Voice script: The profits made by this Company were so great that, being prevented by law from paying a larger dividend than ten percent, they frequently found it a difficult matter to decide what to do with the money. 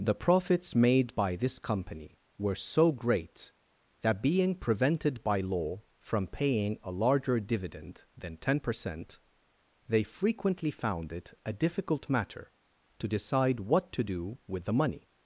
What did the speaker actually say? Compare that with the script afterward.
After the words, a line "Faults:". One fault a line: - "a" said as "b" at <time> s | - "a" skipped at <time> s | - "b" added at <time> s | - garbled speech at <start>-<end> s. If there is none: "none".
The profits made by this Company were so great that, being prevented by law from paying a larger dividend than ten percent, they frequently found it a difficult matter to decide what to do with the money.
Faults:
none